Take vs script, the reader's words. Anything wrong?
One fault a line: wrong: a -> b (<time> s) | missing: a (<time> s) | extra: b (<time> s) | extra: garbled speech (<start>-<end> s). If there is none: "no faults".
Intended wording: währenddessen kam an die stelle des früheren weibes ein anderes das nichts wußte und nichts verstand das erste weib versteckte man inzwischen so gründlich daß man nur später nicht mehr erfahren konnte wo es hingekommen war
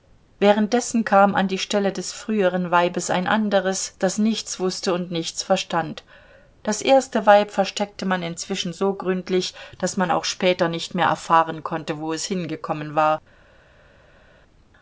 wrong: nur -> auch (10.1 s)